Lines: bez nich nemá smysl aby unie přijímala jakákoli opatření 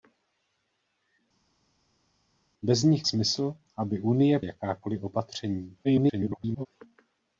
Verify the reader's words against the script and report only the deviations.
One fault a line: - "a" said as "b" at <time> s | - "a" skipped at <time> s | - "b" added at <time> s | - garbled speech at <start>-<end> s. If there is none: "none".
- "nemá" skipped at 3.1 s
- "přijímala" skipped at 4.4 s
- garbled speech at 5.8-6.7 s